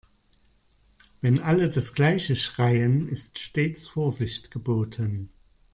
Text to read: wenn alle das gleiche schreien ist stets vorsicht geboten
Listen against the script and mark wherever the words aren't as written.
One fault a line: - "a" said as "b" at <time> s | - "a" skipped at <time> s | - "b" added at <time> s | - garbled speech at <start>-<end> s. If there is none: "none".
none